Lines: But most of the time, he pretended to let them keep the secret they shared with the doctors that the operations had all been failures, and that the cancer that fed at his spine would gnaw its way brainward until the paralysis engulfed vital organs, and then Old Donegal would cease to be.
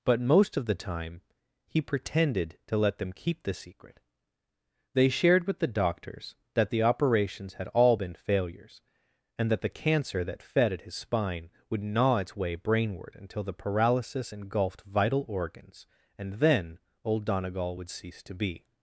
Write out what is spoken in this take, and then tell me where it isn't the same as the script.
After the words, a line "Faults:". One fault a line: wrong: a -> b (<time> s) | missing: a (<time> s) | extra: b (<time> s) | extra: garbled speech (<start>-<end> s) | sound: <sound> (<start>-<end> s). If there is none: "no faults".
But most of the time, he pretended to let them keep the secret they shared with the doctors that the operations had all been failures, and that the cancer that fed at his spine would gnaw its way brainward until the paralysis engulfed vital organs, and then Old Donegal would cease to be.
Faults:
no faults